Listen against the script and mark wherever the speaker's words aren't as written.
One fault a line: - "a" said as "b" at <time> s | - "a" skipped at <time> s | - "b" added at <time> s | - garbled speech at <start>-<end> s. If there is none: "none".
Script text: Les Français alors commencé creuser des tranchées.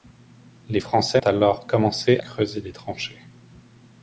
none